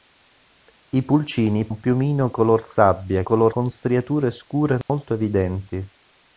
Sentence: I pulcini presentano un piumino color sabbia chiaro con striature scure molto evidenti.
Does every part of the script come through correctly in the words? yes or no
no